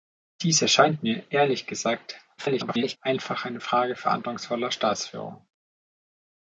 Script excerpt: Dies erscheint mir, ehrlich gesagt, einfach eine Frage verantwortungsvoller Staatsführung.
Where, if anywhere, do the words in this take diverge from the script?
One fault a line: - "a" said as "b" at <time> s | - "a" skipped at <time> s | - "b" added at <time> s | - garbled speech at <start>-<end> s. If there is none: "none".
- garbled speech at 2.4-3.0 s